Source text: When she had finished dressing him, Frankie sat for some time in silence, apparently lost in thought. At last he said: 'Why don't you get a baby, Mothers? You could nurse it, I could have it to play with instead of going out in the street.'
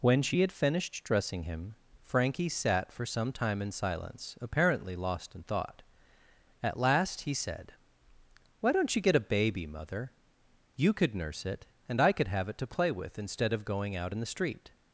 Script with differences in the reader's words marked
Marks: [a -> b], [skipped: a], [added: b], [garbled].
When she had finished dressing him, Frankie sat for some time in silence, apparently lost in thought. At last he said: 'Why don't you get a baby, [Mothers? -> Mother] You could nurse it, [added: and] I could have it to play with instead of going out in the street.'